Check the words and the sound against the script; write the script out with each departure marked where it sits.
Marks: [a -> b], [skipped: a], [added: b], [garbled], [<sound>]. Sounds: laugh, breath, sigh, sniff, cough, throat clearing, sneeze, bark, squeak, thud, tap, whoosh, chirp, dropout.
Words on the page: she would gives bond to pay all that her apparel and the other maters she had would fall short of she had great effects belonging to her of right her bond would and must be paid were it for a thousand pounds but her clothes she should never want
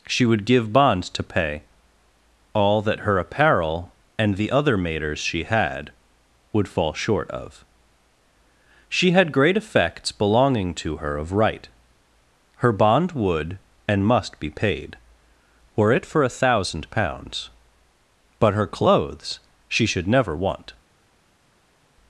she would [gives -> give] bond to pay all that her apparel and the other maters she had would fall short of she had great effects belonging to her of right her bond would and must be paid were it for a thousand pounds but her clothes she should never want